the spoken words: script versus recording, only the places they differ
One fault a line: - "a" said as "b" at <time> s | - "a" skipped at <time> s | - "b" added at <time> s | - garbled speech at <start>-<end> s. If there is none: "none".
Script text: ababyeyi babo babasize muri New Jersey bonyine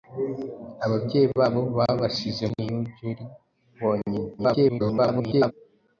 - "muri" skipped at 2.4 s
- garbled speech at 4.4-5.5 s